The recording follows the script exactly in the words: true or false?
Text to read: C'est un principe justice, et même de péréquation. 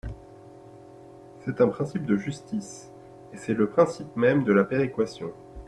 false